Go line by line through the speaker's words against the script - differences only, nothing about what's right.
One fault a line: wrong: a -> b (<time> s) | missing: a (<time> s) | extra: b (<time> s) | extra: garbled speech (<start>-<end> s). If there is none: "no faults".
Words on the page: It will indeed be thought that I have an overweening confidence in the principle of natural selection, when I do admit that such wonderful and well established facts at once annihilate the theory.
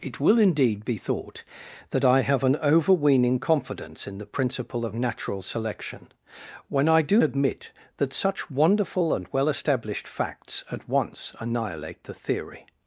no faults